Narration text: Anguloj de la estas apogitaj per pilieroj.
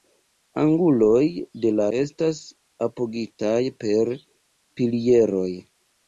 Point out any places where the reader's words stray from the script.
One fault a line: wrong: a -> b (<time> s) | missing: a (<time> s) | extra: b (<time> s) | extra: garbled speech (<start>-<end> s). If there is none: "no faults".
no faults